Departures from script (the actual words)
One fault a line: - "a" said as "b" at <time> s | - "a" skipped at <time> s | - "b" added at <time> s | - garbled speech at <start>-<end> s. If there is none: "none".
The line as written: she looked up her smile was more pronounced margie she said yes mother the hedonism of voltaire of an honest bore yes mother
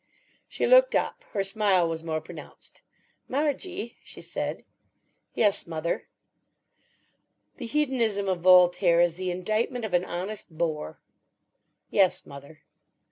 - "is the indictment" added at 9.0 s